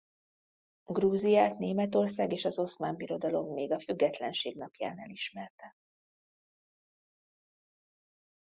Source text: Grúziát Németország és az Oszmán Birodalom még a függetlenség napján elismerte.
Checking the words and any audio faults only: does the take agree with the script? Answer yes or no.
yes